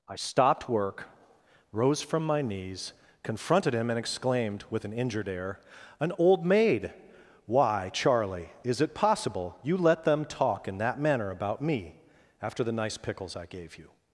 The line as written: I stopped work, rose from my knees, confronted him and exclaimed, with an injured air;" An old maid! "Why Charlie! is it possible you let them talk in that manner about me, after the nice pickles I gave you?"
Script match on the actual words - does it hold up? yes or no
yes